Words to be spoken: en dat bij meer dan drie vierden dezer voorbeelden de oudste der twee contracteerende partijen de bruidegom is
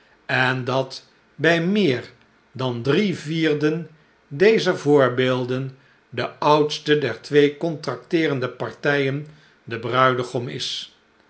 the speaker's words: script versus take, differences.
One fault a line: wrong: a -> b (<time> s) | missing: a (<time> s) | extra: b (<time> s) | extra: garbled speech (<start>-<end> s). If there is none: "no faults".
no faults